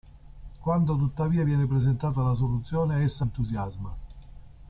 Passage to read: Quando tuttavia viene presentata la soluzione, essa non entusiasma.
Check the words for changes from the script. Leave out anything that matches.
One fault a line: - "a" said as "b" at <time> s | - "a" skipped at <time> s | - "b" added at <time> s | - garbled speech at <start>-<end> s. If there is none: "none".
- "non" skipped at 3.3 s